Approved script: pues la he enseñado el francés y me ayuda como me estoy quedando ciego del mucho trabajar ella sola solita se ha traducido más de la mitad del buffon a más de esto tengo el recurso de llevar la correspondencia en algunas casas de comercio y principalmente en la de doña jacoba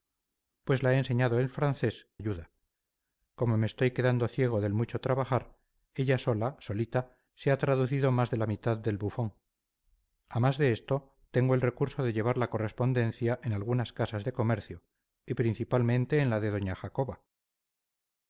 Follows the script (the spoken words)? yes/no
no